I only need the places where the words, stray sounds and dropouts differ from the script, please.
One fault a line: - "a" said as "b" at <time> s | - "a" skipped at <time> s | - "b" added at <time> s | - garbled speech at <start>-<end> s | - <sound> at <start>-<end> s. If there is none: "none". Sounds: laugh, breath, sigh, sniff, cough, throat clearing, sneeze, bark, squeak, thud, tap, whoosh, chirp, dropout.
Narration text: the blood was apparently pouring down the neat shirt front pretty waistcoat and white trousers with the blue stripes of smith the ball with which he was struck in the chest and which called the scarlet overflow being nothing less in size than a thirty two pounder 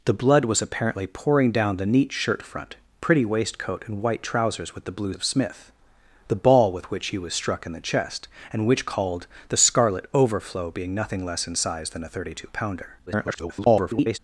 - "stripes" skipped at 5.1 s
- garbled speech at 13.1-14.2 s